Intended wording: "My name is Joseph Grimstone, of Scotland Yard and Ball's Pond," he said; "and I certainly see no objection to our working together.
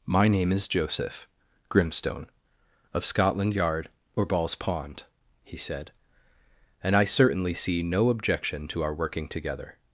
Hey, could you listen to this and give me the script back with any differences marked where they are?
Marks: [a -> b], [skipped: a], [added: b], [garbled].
"My name is Joseph Grimstone, of Scotland Yard [and -> or] Ball's Pond," he said; "and I certainly see no objection to our working together.